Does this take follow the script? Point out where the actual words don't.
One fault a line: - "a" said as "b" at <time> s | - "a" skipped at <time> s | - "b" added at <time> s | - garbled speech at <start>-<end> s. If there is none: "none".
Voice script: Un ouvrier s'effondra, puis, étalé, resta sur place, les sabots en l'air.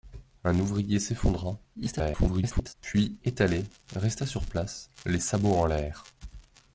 - garbled speech at 1.7-2.7 s